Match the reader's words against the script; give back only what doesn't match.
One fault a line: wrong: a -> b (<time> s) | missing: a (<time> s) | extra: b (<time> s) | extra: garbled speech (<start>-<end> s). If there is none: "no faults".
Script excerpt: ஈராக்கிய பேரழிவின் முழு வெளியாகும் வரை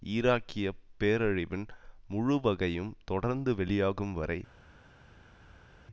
extra: வகையும் தொடர்ந்து (2.4 s)